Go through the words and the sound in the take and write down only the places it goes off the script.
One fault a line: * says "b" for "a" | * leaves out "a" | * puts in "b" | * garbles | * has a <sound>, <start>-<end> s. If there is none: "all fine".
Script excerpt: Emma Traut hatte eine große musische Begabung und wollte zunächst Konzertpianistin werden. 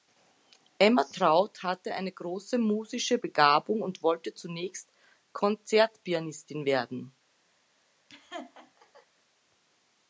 * has a laugh, 8.1-9.1 s